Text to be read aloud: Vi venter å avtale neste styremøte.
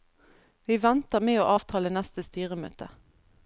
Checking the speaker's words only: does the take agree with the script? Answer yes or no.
no